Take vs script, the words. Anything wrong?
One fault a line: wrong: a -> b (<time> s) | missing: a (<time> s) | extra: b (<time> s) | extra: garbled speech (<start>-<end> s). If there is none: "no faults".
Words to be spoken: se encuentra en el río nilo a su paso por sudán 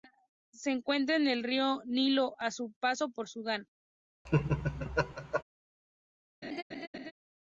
no faults